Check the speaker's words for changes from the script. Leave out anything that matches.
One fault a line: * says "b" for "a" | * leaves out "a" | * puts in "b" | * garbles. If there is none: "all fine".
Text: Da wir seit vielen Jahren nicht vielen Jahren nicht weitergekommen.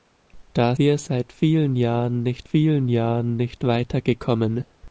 all fine